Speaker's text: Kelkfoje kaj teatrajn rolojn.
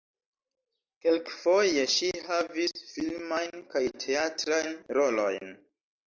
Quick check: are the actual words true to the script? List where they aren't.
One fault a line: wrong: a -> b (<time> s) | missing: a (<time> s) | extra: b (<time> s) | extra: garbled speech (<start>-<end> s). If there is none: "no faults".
extra: ŝi havis filmajn (1.9 s)